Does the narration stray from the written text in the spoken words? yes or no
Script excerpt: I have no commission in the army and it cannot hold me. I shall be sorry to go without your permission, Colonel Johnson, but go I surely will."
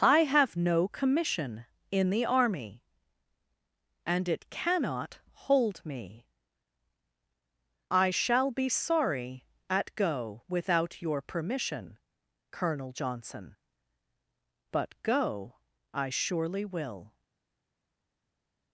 yes